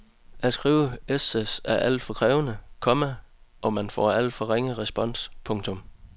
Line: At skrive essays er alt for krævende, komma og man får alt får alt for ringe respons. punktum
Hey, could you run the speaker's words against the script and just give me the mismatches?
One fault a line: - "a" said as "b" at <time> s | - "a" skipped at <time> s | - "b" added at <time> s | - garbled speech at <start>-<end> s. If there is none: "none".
- "får alt" skipped at 4.3 s